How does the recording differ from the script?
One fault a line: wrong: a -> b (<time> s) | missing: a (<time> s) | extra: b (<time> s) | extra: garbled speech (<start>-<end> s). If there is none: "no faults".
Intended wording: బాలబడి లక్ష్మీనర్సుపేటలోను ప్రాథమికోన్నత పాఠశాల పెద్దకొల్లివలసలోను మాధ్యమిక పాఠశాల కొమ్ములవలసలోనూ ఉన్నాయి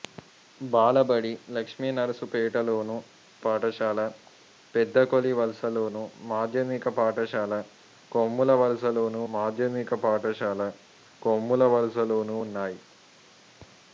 wrong: ప్రాథమికోన్నత -> పాఠశాల పెద్దకొల్లివలసలోను మాధ్యమిక (3.5 s)
wrong: పెద్దకొల్లివలసలోను -> కొమ్ములవలసలోనూ (8.1 s)